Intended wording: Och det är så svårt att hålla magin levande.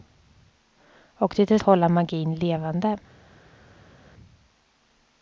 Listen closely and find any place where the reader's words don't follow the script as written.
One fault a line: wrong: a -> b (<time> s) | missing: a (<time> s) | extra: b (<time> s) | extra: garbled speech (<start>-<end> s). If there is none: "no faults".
missing: så svårt att (1.6 s)